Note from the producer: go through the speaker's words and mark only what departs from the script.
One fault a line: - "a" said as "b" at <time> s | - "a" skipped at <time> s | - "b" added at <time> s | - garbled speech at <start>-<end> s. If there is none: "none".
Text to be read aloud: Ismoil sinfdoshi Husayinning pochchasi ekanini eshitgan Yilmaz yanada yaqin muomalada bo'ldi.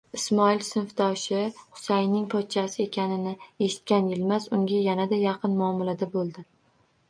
- "unga" added at 4.6 s